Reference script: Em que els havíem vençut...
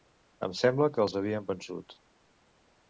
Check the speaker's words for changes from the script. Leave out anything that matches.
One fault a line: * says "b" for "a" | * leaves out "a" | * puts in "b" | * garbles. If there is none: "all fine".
* puts in "sembla"